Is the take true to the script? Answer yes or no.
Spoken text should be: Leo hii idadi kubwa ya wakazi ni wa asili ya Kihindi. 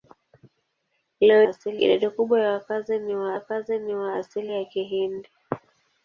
no